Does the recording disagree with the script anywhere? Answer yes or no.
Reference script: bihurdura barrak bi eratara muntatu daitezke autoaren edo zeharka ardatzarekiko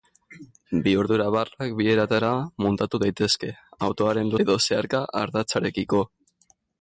no